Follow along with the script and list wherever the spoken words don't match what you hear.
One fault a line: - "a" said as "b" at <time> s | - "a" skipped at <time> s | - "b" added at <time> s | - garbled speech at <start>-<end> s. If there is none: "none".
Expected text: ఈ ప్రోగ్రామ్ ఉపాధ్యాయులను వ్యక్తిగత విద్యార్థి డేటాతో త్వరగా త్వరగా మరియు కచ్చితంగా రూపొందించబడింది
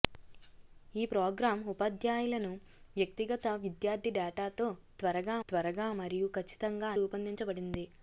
none